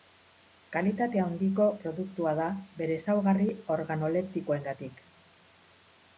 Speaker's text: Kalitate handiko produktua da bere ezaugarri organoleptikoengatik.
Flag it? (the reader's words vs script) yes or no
no